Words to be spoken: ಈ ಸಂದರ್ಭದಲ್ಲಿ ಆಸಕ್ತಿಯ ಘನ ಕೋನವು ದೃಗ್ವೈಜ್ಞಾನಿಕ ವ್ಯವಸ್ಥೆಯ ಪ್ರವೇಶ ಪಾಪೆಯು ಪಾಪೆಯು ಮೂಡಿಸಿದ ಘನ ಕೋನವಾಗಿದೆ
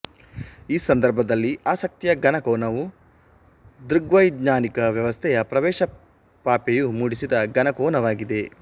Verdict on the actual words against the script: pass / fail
fail